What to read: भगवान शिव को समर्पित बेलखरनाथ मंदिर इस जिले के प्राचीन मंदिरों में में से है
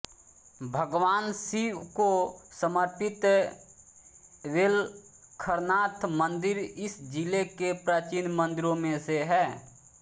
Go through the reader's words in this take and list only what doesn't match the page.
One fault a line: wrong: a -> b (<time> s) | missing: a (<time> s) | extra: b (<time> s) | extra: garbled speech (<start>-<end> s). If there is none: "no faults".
missing: में (9.0 s)